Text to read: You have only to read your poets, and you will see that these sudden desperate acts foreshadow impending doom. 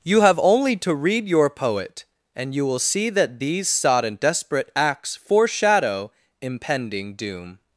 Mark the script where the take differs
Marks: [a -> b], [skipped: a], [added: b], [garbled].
You have only to read your [poets, -> poet] and you will see that these [sudden -> sodden] desperate acts foreshadow impending doom.